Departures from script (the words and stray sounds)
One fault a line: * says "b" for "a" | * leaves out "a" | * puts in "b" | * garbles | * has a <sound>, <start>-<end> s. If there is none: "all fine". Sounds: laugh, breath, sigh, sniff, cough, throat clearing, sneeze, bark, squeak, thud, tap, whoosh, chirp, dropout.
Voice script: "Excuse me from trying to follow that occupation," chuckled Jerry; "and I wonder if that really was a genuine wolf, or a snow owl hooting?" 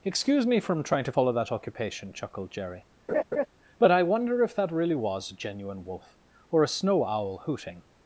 * has a laugh, 3.1-3.5 s
* says "but" for "and"